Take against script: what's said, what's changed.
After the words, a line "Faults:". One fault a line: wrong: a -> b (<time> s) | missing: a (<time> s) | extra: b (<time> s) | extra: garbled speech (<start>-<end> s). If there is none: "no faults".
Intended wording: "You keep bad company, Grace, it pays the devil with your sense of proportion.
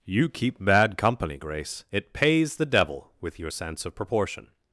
"You keep bad company, Grace, it pays the devil with your sense of proportion.
Faults:
no faults